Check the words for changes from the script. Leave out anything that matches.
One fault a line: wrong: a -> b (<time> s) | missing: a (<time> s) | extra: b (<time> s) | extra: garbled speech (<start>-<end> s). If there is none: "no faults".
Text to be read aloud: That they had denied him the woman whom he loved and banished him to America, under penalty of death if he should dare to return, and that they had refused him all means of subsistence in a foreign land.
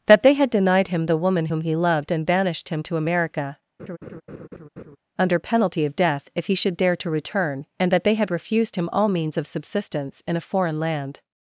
no faults